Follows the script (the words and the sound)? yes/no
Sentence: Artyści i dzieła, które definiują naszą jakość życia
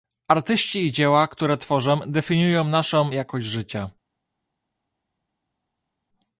no